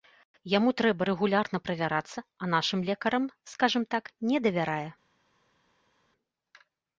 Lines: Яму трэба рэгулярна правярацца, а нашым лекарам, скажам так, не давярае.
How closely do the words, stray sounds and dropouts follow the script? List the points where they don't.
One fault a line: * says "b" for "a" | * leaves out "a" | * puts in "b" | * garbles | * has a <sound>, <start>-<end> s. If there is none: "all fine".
all fine